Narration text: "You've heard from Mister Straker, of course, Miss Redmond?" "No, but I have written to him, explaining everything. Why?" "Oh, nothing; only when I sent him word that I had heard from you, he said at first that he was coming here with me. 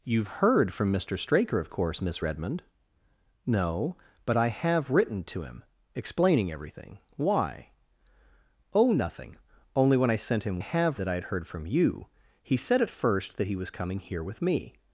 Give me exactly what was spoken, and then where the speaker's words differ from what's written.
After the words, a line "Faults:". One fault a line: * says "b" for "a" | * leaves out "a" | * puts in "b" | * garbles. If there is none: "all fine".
"You've heard from Mister Straker, of course, Miss Redmond?" "No, but I have written to him, explaining everything. Why?" "Oh, nothing; only when I sent him have that I had heard from you, he said at first that he was coming here with me.
Faults:
* says "have" for "word"